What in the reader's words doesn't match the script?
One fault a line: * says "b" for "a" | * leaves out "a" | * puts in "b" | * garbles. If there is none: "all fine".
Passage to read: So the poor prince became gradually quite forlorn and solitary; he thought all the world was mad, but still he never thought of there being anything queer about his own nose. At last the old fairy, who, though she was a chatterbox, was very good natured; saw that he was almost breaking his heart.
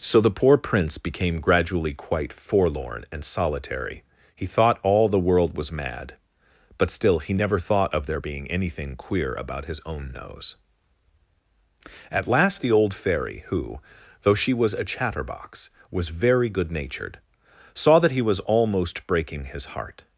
all fine